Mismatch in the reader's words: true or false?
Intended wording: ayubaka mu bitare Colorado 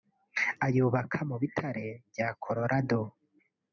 true